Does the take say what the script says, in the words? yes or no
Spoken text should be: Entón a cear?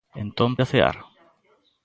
yes